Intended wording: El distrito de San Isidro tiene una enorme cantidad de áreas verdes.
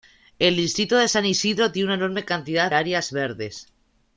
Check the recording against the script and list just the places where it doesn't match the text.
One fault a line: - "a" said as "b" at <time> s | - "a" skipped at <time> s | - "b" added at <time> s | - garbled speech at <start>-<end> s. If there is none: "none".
- "de" skipped at 2.7 s